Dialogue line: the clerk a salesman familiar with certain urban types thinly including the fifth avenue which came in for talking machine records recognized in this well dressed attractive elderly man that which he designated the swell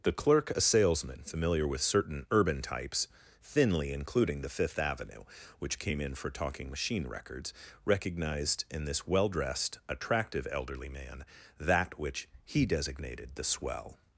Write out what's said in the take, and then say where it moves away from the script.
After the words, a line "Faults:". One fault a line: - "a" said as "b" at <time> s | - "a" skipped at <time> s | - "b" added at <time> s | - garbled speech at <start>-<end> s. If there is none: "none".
the clerk a salesman familiar with certain urban types thinly including the fifth avenue which came in for talking machine records recognized in this well dressed attractive elderly man that which he designated the swell
Faults:
none